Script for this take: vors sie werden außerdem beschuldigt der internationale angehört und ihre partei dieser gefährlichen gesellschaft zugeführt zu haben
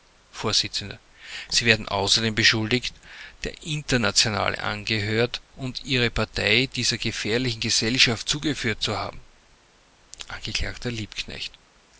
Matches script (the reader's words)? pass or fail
pass